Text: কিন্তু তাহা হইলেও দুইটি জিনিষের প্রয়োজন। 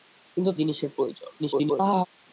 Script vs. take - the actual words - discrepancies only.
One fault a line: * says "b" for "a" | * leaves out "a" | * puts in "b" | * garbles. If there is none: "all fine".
* leaves out "তাহা হইলেও দুইটি"
* garbles